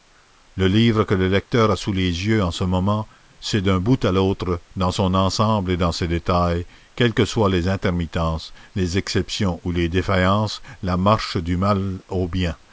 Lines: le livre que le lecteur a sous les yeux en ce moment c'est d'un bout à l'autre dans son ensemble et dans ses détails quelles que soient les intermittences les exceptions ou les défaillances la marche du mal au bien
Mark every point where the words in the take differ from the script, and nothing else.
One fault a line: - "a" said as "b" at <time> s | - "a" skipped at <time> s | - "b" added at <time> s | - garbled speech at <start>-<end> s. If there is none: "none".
none